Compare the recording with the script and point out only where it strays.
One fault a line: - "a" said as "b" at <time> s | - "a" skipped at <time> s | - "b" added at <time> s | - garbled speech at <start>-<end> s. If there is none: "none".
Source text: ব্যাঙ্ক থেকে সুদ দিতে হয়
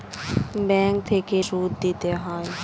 none